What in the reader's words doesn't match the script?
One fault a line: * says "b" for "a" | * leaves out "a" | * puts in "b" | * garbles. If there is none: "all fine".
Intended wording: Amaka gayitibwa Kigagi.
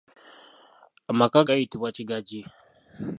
all fine